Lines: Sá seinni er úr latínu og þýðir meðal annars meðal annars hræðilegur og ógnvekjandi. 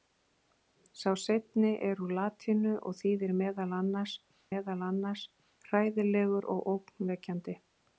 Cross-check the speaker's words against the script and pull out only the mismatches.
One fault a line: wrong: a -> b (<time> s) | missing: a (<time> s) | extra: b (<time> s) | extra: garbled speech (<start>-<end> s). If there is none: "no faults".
no faults